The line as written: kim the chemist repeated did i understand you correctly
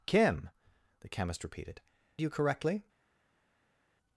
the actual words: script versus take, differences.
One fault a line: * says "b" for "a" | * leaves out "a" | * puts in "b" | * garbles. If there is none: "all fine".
* leaves out "did i understand"